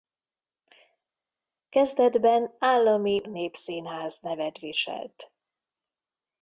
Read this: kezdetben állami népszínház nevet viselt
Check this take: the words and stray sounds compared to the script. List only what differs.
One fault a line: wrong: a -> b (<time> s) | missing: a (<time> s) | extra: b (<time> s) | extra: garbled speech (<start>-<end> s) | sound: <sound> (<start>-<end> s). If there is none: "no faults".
no faults